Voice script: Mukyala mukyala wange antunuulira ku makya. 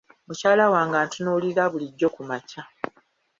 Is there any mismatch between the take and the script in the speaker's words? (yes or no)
yes